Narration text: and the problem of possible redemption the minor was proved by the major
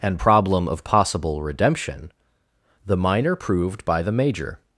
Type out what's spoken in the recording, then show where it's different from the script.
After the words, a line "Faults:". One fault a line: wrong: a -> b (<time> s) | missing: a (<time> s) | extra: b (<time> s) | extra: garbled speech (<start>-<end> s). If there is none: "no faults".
and problem of possible redemption the minor proved by the major
Faults:
missing: the (0.2 s)
missing: was (3.3 s)